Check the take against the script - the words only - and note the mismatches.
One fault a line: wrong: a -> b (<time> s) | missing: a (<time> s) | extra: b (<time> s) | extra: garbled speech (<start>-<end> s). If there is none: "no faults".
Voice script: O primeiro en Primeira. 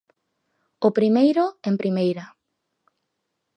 no faults